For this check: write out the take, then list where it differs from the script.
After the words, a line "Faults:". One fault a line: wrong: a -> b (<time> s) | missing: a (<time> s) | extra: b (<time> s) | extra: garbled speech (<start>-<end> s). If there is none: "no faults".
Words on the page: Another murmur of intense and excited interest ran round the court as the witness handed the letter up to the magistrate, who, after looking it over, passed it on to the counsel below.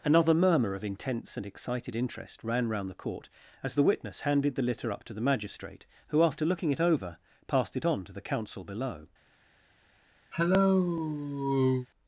Another murmur of intense and excited interest ran round the court as the witness handed the litter up to the magistrate, who, after looking it over, passed it on to the counsel below.
Faults:
wrong: letter -> litter (4.6 s)